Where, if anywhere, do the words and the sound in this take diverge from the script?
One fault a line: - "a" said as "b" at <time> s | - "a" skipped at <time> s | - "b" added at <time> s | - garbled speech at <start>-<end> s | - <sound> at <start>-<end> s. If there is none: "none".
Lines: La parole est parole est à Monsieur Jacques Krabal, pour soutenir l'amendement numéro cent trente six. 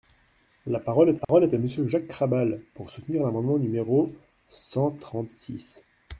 - dropout at 1.2-1.3 s